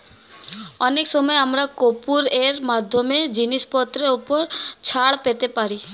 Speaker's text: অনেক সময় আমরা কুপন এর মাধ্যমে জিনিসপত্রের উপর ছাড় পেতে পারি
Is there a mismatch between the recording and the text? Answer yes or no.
no